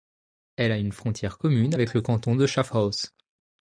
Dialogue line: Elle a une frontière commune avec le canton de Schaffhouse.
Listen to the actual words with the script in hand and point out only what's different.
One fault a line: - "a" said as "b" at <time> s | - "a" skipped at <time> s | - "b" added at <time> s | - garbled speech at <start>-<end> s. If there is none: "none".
none